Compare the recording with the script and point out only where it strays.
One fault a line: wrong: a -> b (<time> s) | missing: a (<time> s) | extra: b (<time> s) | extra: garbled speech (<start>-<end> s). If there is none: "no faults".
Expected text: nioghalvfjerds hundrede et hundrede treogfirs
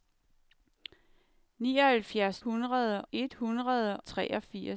no faults